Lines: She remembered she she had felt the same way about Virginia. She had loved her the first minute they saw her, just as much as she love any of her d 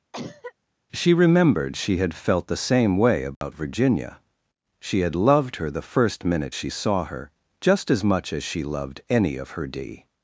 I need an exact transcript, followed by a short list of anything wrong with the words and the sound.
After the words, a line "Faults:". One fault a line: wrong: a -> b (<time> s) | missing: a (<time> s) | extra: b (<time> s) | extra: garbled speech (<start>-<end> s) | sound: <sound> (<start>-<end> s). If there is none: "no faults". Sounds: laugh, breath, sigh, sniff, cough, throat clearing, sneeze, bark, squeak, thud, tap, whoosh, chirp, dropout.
She remembered she had felt the same way about Virginia. She had loved her the first minute she saw her, just as much as she loved any of her d
Faults:
sound: cough (0.1-0.5 s)
missing: she (2.0 s)
sound: dropout (3.3-3.4 s)
wrong: they -> she (6.5 s)
wrong: love -> loved (8.6 s)